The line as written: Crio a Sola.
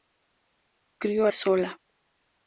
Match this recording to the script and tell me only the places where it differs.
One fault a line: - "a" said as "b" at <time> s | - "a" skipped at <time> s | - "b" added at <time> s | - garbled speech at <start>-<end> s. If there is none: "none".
none